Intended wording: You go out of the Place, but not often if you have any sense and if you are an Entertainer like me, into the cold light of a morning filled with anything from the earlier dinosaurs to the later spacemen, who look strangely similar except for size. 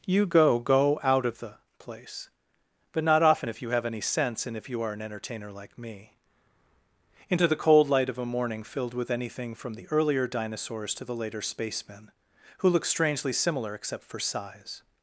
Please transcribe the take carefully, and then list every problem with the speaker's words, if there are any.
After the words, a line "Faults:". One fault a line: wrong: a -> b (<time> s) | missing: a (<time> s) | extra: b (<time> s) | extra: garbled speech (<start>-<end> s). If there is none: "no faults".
You go go out of the Place, but not often if you have any sense and if you are an Entertainer like me, into the cold light of a morning filled with anything from the earlier dinosaurs to the later spacemen, who look strangely similar except for size.
Faults:
extra: go (0.6 s)